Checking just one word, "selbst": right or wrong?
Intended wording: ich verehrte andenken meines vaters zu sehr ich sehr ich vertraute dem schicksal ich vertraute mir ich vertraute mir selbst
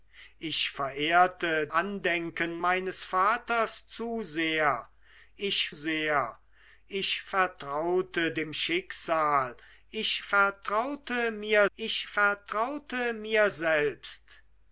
right